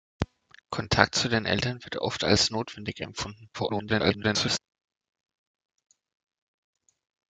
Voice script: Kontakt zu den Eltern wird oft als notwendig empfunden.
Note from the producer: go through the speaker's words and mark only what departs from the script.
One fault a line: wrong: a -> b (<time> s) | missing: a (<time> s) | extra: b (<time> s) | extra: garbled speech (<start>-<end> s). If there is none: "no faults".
extra: garbled speech (3.5-4.6 s)